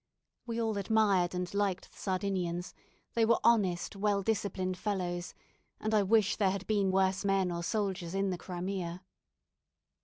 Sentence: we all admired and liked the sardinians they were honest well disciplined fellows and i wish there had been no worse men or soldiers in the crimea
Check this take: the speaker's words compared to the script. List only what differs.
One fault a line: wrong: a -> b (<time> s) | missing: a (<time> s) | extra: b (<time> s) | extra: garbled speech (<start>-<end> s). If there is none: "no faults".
missing: no (6.9 s)